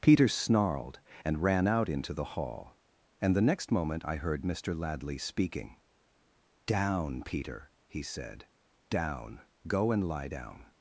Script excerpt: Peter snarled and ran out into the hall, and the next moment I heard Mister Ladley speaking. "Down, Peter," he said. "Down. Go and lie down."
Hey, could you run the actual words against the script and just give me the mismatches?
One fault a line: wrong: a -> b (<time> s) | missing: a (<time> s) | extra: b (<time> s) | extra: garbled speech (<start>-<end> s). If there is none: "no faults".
no faults